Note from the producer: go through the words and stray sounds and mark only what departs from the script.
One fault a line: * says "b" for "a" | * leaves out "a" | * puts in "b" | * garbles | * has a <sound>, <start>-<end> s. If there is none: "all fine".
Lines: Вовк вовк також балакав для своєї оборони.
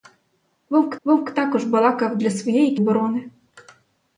all fine